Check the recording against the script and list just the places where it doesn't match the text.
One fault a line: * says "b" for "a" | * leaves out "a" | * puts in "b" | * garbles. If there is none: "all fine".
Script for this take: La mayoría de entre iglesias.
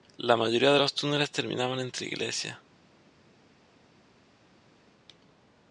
* puts in "los túneles terminaban"